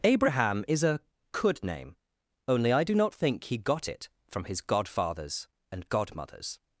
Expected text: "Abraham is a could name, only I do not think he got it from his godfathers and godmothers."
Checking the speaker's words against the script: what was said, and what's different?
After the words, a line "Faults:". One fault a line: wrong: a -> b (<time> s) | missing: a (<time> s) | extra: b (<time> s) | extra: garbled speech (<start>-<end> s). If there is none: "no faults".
"Abraham is a could name, only I do not think he got it from his godfathers and godmothers."
Faults:
no faults